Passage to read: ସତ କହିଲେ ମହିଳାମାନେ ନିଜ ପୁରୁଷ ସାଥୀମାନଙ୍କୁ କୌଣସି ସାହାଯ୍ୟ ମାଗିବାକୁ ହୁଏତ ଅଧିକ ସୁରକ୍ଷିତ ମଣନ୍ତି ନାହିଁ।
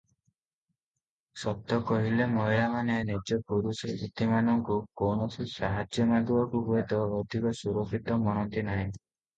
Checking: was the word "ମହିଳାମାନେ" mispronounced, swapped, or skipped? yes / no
no